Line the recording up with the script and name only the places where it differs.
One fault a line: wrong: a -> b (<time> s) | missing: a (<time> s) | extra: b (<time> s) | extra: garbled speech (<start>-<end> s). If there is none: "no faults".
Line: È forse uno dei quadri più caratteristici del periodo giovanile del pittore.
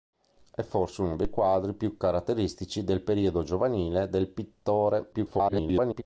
extra: garbled speech (5.1-6.0 s)